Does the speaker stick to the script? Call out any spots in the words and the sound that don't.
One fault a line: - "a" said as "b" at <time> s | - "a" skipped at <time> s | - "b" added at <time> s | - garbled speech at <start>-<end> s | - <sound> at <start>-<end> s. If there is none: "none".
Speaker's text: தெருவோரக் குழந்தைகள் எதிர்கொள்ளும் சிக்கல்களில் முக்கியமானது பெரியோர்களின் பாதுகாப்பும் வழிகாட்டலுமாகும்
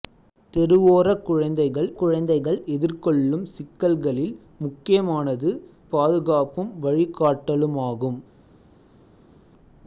- "குழந்தைகள்" added at 2.0 s
- "பெரியோர்களின்" skipped at 5.5 s